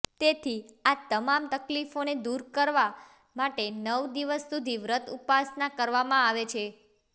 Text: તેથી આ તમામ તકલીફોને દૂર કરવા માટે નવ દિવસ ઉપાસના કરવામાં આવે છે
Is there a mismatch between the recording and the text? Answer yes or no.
yes